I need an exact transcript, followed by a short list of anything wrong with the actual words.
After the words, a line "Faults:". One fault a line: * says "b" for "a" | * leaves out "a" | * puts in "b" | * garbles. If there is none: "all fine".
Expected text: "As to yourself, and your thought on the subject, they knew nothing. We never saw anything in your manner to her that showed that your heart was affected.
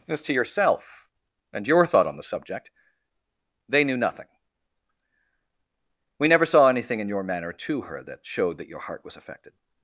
"As to yourself, and your thought on the subject, they knew nothing. We never saw anything in your manner to her that showed that your heart was affected.
Faults:
all fine